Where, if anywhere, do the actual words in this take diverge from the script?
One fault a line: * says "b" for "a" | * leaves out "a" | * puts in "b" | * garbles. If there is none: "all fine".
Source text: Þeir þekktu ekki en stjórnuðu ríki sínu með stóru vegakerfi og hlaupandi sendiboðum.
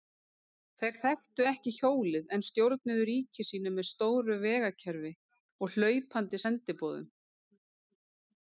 * puts in "hjólið"